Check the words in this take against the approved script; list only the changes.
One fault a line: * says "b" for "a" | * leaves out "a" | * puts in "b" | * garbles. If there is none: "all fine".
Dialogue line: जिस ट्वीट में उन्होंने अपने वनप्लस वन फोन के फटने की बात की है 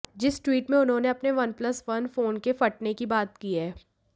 all fine